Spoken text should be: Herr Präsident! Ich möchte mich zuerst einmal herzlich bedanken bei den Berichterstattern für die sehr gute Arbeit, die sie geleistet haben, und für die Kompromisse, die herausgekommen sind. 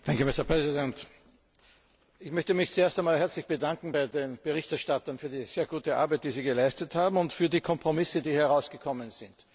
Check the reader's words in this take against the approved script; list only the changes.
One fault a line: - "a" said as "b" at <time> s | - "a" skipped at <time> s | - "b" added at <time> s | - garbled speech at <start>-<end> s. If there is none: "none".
none